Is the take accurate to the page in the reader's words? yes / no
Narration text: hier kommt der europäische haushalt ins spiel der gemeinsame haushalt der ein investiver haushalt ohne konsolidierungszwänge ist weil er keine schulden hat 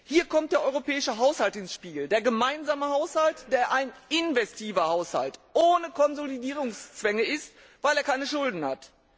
yes